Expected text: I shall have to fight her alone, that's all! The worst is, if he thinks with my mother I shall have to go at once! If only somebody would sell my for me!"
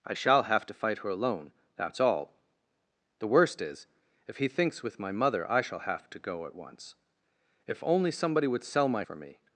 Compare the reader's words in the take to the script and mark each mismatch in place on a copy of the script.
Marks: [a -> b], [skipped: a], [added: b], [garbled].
I shall have to fight her alone, that's all! The worst is, if he thinks with my mother I shall have to go at once! If only somebody would sell my for me!"